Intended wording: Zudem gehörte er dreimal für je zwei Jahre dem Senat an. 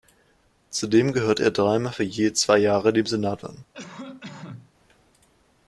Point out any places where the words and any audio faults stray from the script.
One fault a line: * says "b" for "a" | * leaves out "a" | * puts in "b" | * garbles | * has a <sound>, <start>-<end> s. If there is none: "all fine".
* has a cough, 3.7-4.7 s